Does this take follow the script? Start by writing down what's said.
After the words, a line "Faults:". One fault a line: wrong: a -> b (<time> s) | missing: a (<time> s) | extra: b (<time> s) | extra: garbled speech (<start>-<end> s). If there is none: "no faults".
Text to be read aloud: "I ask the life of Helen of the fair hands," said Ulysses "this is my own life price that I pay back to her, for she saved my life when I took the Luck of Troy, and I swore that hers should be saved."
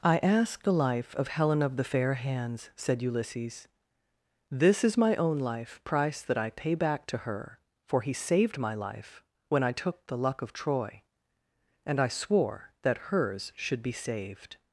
"I ask the life of Helen of the fair hands," said Ulysses "this is my own life price that I pay back to her, for he saved my life when I took the Luck of Troy, and I swore that hers should be saved."
Faults:
wrong: she -> he (8.0 s)